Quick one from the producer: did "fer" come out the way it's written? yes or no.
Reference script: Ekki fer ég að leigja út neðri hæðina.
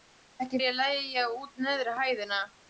no